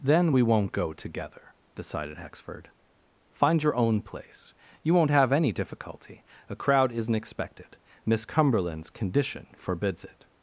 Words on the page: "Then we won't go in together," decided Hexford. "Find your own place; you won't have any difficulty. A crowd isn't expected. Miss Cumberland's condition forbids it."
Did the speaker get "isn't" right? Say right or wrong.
right